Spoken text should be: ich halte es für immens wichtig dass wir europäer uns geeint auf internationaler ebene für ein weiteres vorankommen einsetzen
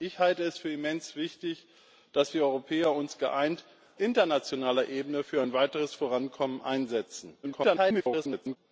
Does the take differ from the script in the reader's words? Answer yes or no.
yes